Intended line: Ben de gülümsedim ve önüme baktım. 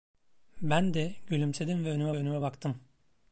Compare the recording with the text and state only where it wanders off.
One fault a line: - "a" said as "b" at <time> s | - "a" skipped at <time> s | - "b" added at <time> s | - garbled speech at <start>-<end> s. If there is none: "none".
- "önüme" added at 2.1 s